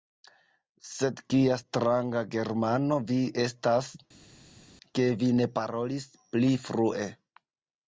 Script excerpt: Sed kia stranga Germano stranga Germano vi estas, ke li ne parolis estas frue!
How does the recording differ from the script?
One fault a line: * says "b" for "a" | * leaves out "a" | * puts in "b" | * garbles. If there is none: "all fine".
* leaves out "stranga Germano"
* says "vi" for "li"
* says "pli" for "estas"